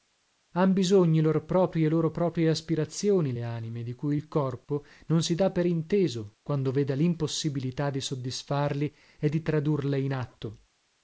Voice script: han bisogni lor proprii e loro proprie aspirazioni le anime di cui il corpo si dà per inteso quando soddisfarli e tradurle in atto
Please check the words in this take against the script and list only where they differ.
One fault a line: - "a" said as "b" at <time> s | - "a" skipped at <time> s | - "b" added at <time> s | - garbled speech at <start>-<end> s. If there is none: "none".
- "non" added at 5.1 s
- "veda limpossibilità di" added at 6.7 s
- "di" added at 9.3 s